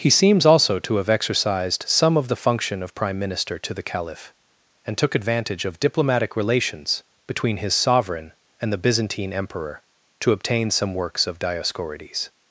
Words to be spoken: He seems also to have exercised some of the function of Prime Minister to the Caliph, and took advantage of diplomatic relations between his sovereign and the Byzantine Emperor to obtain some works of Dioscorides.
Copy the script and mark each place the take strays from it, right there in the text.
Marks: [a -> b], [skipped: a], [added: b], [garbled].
He seems also to have exercised some of the function of Prime Minister to the Caliph, and took advantage of diplomatic relations between his sovereign and the Byzantine Emperor to obtain some works of Dioscorides.